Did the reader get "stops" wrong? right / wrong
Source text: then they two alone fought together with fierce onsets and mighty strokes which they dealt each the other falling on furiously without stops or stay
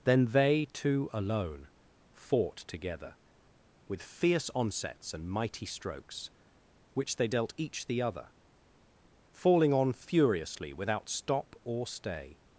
wrong